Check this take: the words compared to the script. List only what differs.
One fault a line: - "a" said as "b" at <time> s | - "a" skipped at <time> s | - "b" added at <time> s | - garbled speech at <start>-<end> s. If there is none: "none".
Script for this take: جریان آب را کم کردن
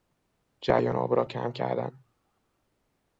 none